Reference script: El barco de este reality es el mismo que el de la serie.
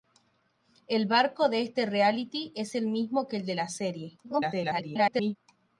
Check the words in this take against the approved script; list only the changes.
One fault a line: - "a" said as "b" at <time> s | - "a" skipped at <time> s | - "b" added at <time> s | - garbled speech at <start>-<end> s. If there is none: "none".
- garbled speech at 4.2-5.4 s